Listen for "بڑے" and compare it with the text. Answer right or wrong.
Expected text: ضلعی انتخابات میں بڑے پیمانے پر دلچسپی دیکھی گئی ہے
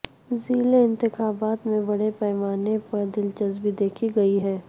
right